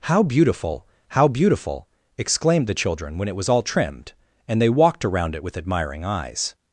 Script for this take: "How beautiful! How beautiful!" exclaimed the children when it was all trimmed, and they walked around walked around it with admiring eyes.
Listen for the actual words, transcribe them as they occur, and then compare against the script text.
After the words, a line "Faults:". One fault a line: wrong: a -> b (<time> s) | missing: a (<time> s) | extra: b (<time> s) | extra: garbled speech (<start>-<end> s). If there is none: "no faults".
"How beautiful! How beautiful!" exclaimed the children when it was all trimmed, and they walked around it with admiring eyes.
Faults:
missing: walked around (5.3 s)